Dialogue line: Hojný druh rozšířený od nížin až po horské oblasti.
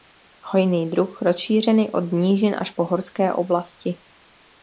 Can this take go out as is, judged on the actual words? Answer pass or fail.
pass